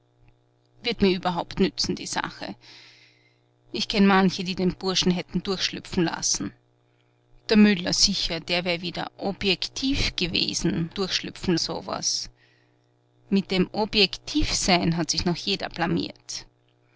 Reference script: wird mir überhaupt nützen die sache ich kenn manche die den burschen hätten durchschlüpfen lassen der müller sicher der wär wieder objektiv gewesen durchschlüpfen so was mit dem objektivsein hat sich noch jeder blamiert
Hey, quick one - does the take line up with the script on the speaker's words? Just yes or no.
yes